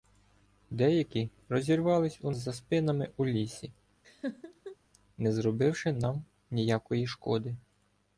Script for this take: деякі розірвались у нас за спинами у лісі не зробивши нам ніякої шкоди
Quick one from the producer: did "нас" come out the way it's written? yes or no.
no